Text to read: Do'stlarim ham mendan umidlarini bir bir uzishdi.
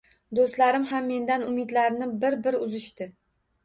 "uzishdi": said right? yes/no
yes